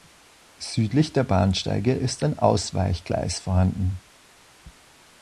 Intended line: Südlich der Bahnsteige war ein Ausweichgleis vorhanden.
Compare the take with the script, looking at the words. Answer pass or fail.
fail